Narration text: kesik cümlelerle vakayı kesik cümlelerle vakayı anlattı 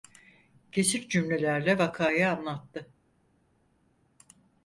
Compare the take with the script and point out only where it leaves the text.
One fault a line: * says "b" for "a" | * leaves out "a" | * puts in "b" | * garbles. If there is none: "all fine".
* leaves out "kesik cümlelerle vakayı"